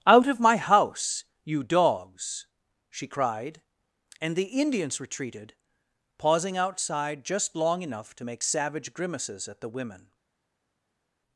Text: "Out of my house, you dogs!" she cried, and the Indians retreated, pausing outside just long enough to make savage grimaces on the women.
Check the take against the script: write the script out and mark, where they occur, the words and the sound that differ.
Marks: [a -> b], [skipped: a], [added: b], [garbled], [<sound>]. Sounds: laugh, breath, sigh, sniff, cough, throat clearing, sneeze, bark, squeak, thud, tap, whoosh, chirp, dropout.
"Out of my house, you dogs!" she cried, and the Indians retreated, pausing outside just long enough to make savage grimaces [on -> at] the women.